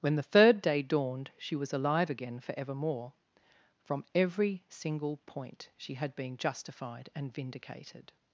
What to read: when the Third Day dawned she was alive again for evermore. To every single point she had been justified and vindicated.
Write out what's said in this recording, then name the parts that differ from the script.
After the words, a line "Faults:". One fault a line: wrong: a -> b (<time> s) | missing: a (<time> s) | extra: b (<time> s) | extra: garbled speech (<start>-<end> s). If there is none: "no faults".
when the Third Day dawned she was alive again for evermore. From every single point she had been justified and vindicated.
Faults:
wrong: To -> From (3.8 s)